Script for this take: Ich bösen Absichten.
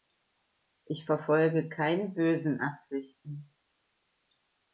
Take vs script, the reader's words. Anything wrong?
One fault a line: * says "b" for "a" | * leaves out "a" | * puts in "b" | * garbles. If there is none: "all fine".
* puts in "verfolge keine"